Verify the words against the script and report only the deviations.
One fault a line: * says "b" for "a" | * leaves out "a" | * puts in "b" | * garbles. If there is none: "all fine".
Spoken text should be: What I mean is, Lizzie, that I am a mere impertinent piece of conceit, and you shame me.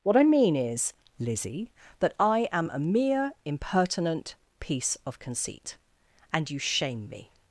all fine